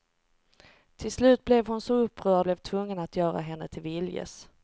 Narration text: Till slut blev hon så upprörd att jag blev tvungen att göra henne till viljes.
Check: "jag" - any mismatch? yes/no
yes